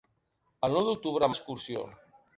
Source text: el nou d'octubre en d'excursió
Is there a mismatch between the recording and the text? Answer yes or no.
no